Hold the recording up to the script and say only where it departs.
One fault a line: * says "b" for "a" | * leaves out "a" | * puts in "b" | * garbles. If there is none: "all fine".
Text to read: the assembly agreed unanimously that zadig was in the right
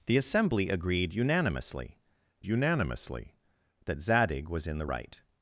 * puts in "unanimously"